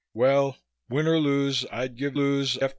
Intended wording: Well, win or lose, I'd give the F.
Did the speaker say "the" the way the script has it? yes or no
no